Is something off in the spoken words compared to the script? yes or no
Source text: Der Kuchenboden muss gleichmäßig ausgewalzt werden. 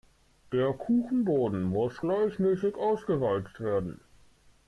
no